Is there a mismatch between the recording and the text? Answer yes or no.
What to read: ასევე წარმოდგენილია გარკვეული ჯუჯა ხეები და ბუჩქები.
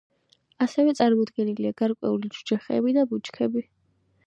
no